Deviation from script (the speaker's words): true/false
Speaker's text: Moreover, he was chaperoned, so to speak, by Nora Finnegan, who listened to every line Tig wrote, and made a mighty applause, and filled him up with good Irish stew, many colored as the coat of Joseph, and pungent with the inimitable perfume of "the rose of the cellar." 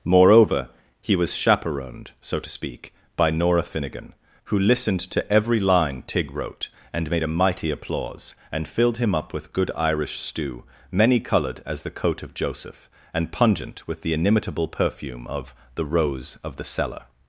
false